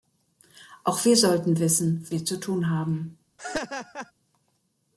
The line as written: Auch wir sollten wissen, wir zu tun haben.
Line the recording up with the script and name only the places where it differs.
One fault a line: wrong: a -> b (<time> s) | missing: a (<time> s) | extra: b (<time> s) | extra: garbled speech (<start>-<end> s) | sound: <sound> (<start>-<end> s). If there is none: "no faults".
sound: laugh (3.4-4.1 s)